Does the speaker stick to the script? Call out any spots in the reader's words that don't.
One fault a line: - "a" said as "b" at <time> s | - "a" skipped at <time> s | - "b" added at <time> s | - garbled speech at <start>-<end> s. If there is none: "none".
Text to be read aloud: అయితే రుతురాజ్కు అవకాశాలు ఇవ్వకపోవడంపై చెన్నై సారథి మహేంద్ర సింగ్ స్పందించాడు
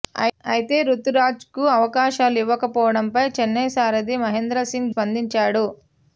none